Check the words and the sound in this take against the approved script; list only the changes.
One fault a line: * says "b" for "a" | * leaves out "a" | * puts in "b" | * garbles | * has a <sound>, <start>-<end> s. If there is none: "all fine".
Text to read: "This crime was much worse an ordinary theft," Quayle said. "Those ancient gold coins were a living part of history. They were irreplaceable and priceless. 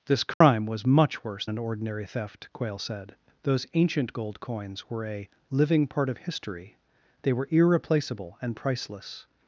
* has a dropout, 0.3-0.4 s